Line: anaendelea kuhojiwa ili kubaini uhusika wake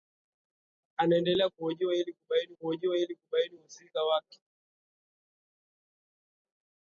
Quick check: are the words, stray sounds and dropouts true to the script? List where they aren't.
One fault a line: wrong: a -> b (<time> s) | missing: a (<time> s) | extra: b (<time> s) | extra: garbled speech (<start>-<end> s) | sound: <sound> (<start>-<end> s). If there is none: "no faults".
extra: kuhojiwa ili kubaini (2.5 s)